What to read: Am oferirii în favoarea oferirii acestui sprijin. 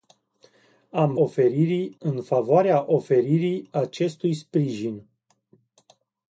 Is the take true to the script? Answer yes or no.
yes